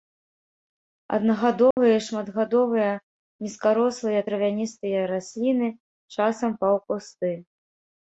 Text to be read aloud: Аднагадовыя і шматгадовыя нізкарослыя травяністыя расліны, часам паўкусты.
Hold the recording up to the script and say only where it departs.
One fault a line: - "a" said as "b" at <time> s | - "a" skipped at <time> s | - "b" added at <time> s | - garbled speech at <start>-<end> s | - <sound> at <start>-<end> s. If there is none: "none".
- dropout at 1.7-1.8 s